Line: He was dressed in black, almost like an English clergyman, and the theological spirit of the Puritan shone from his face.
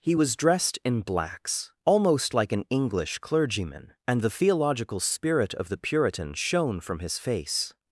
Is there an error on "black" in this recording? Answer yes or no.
yes